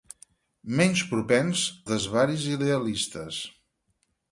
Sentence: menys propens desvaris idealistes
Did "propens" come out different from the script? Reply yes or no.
no